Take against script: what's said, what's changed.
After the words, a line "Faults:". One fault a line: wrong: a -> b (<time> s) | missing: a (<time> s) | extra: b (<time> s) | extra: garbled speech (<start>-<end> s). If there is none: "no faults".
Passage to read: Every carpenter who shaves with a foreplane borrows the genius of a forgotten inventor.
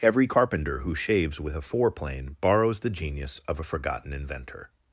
Every carpenter who shaves with a foreplane borrows the genius of a forgotten inventor.
Faults:
no faults